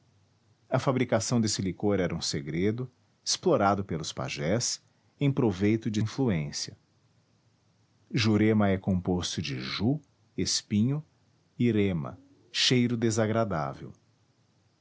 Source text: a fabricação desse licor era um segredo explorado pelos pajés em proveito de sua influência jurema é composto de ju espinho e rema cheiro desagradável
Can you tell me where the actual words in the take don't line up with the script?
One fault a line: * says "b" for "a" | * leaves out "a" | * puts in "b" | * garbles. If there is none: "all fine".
* leaves out "sua"